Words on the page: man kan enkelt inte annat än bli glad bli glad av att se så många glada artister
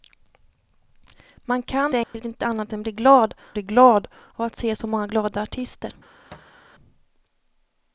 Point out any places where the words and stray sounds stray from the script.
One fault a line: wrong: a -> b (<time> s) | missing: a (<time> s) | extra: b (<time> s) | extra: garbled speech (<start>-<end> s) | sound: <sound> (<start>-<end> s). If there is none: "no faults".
sound: dropout (2.0-2.1 s)
sound: thud (6.3-6.6 s)